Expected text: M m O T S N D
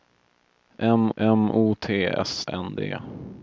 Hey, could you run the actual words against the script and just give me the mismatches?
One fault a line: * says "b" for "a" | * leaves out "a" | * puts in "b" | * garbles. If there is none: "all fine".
all fine